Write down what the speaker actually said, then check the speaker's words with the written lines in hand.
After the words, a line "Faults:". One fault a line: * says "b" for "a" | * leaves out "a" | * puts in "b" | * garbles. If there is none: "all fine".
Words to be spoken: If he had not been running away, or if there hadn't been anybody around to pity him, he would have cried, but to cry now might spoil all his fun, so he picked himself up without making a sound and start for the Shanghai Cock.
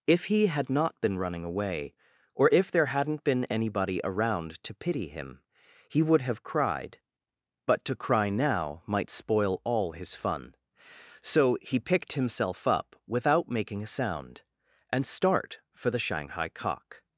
If he had not been running away, or if there hadn't been anybody around to pity him, he would have cried, but to cry now might spoil all his fun, so he picked himself up without making a sound and start for the Shanghai Cock.
Faults:
all fine